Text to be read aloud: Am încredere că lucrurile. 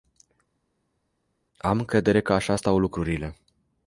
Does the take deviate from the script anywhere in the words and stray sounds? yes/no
yes